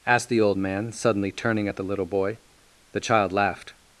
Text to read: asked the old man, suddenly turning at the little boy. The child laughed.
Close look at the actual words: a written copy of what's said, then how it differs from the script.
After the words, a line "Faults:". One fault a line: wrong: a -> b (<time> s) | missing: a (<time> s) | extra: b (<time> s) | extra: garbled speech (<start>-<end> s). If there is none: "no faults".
asked the old man, suddenly turning at the little boy. The child laughed.
Faults:
no faults